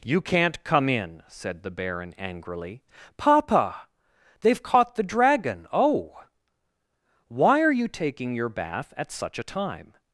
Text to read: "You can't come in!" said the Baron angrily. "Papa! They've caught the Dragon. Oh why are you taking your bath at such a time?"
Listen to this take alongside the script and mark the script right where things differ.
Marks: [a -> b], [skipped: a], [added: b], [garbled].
"You can't come in!" said the Baron angrily. "Papa! They've caught the Dragon. Oh why are you taking your bath at such a time?"